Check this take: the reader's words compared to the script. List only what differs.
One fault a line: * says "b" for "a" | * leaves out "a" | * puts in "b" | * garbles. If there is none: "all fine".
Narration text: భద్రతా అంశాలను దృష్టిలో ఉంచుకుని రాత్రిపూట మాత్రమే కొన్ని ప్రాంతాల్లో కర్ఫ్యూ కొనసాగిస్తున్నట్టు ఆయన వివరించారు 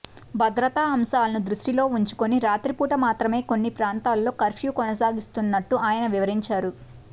all fine